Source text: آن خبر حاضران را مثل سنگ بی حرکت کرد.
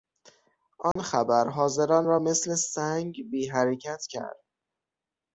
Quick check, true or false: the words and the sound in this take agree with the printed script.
false